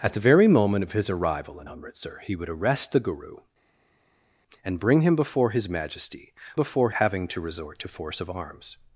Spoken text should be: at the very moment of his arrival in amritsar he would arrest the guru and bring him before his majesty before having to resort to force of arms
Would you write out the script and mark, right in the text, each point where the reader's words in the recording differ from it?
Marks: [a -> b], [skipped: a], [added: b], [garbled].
at the very moment of his arrival in amritsar he would arrest the guru and bring him before his majesty before having to resort to force of arms